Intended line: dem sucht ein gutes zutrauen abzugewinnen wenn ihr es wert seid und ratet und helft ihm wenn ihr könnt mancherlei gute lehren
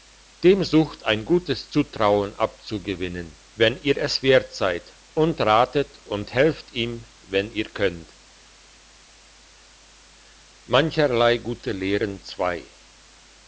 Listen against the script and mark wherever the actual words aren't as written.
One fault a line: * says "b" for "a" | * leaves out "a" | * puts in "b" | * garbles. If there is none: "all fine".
all fine